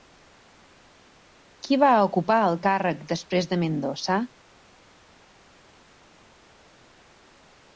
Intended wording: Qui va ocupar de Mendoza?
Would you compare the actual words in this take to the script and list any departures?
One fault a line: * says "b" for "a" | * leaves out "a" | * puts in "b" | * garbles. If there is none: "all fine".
* puts in "el càrrec després"